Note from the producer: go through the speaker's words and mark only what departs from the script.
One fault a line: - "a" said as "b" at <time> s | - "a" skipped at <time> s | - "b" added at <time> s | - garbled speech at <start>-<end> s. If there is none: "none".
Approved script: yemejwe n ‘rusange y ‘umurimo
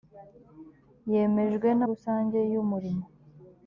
none